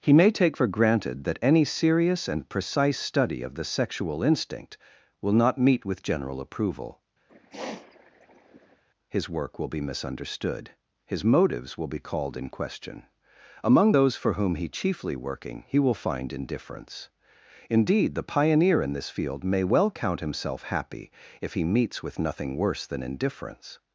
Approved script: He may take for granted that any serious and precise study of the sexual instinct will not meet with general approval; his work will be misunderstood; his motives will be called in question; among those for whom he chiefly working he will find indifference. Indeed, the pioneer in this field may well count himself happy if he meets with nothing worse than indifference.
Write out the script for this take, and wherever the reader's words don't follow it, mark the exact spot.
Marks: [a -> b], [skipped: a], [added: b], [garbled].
He may take for granted that any serious and precise study of the sexual instinct will not meet with general approval; his work will be misunderstood; his motives will be called in question; among those for whom he chiefly working he will find indifference. Indeed, the pioneer in this field may well count himself happy if he meets with nothing worse than indifference.